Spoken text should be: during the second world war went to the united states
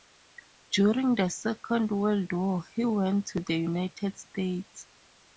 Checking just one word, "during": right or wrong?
right